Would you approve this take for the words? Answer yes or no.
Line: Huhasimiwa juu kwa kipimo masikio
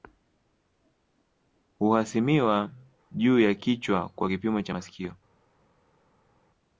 no